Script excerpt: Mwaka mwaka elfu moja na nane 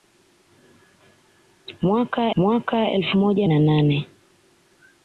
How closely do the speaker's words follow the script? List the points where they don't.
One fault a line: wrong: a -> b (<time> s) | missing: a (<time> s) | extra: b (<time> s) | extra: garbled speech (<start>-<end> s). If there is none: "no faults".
no faults